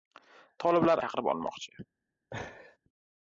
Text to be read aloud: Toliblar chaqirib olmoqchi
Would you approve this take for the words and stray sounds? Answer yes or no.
no